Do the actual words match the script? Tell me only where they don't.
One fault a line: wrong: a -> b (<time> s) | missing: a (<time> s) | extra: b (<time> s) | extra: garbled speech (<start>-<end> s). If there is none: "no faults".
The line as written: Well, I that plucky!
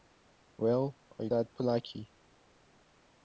no faults